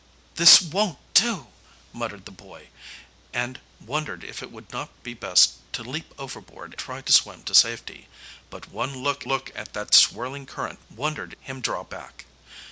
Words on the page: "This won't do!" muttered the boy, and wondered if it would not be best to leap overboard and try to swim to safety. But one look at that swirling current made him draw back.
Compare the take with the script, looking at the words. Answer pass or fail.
fail